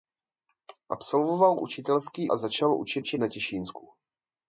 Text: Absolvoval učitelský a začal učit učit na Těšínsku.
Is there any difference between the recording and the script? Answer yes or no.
no